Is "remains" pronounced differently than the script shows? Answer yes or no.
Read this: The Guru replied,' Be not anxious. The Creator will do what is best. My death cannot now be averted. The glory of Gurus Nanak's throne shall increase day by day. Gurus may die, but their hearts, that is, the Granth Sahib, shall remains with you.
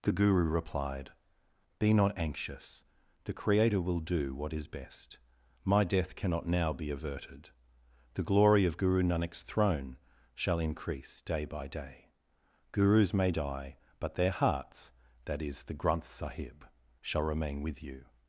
yes